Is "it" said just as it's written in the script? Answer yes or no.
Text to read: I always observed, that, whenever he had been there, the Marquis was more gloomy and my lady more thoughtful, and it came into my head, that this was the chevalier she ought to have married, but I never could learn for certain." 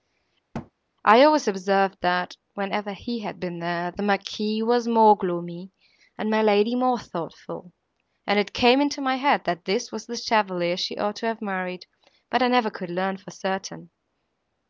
yes